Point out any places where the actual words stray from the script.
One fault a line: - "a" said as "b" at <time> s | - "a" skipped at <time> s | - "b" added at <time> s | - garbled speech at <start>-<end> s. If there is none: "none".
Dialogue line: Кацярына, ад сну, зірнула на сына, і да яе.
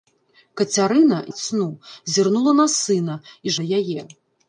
none